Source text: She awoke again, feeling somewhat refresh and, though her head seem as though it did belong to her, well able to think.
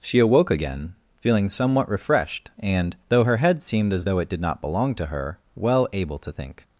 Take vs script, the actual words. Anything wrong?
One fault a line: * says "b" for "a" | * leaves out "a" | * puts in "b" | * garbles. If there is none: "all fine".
* says "refreshed" for "refresh"
* says "seemed" for "seem"
* puts in "not"